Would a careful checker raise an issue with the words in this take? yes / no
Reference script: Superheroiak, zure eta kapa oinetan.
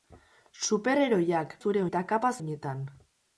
no